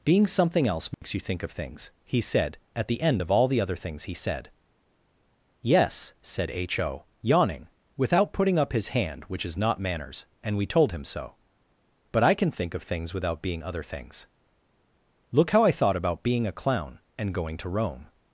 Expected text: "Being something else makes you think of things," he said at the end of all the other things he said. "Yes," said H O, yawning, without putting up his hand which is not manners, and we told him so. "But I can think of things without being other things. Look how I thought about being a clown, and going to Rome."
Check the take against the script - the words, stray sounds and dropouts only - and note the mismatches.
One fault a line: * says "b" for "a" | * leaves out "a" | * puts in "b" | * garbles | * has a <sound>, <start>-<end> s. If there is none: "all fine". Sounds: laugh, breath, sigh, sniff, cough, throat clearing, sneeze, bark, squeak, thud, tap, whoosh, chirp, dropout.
* has a dropout, 0.9-1.0 s